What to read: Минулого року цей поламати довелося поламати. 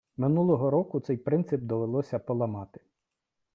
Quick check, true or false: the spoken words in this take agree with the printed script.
false